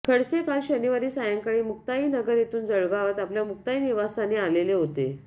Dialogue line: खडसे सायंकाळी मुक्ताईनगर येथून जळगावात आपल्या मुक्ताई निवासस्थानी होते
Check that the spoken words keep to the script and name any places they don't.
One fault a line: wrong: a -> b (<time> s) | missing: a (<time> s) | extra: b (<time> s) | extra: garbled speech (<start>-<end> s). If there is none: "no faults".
extra: काल शनिवारी (0.4 s)
extra: आलेले (4.4 s)